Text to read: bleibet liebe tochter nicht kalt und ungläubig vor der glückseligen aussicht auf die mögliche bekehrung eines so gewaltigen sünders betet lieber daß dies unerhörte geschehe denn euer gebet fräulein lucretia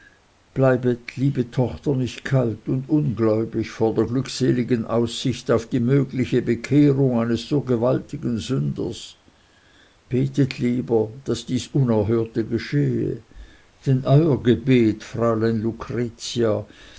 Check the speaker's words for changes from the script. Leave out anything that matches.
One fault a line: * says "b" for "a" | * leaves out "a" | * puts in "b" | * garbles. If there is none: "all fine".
all fine